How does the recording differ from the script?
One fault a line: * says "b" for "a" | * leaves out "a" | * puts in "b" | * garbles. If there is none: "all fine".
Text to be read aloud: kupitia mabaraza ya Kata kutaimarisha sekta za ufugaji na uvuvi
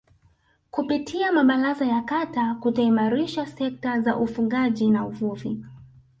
all fine